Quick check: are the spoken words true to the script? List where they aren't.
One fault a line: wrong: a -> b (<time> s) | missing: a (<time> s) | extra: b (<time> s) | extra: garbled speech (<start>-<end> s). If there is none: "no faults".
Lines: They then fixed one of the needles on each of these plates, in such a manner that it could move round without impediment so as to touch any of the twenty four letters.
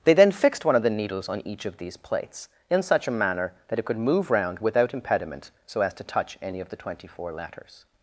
no faults